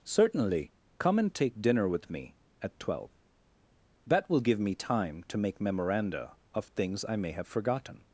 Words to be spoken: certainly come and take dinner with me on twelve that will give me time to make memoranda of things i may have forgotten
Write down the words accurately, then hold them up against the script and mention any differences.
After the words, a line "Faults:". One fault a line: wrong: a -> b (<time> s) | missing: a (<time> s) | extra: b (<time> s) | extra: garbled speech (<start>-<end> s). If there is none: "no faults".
certainly come and take dinner with me at twelve that will give me time to make memoranda of things i may have forgotten
Faults:
wrong: on -> at (2.6 s)